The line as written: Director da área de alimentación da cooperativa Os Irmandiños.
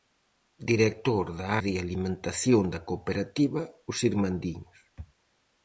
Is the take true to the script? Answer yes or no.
no